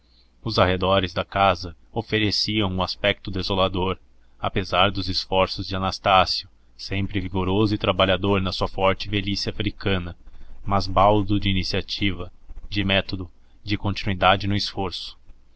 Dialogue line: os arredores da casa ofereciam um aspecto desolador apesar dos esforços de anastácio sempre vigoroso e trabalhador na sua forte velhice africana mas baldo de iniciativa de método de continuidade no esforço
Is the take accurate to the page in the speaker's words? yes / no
yes